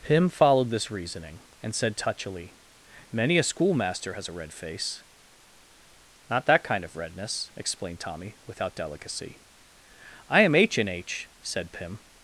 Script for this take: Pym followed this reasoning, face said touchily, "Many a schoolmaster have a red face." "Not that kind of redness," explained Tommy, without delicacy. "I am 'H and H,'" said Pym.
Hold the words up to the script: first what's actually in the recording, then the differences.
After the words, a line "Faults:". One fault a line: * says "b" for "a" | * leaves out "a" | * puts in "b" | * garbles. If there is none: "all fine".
Pym followed this reasoning, and said touchily, "Many a schoolmaster has a red face." "Not that kind of redness," explained Tommy, without delicacy. "I am 'H and H,'" said Pym.
Faults:
* says "and" for "face"
* says "has" for "have"